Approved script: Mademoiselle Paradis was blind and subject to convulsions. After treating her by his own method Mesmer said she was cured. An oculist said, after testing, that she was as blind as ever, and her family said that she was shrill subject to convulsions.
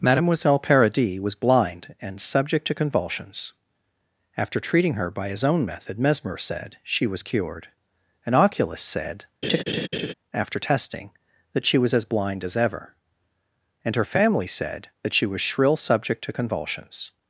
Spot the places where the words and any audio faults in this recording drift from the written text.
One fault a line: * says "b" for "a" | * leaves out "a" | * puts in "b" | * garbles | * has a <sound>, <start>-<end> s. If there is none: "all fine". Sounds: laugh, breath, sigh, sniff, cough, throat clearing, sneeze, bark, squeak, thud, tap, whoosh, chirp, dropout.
* has a laugh, 9.4-10.1 s